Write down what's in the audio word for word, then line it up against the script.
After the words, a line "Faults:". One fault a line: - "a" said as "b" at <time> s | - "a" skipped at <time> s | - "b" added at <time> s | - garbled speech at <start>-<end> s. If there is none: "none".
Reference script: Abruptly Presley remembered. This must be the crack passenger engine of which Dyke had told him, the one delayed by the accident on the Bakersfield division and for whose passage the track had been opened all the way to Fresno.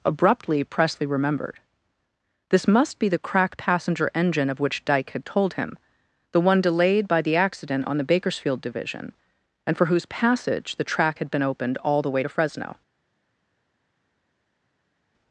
Abruptly Presley remembered. This must be the crack passenger engine of which Dyke had told him, the one delayed by the accident on the Bakersfield division and for whose passage the track had been opened all the way to Fresno.
Faults:
none